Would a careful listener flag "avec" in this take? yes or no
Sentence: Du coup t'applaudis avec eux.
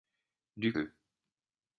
yes